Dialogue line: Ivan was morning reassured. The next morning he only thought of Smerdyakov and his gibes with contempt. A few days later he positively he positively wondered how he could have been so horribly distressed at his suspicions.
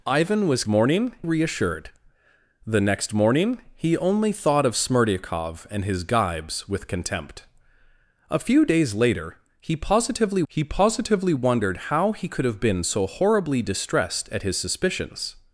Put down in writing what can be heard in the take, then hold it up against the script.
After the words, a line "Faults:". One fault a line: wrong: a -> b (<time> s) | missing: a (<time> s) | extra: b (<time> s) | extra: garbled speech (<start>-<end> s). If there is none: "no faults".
Ivan was morning reassured. The next morning he only thought of Smerdyakov and his gibes with contempt. A few days later he positively he positively wondered how he could have been so horribly distressed at his suspicions.
Faults:
no faults